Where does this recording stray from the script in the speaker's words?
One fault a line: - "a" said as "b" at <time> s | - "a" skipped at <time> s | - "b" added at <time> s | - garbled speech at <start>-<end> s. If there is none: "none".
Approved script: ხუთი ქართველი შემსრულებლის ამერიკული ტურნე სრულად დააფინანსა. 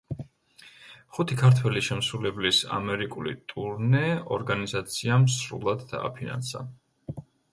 - "ორგანიზაციამ" added at 4.4 s